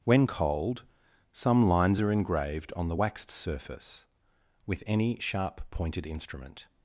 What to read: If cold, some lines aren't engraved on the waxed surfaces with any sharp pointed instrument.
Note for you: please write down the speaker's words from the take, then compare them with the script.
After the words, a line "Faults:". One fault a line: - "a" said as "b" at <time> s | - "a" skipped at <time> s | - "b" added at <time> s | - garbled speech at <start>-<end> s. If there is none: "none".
When cold, some lines are engraved on the waxed surface with any sharp pointed instrument.
Faults:
- "If" said as "When" at 0.0 s
- "aren't" said as "are" at 2.0 s
- "surfaces" said as "surface" at 3.3 s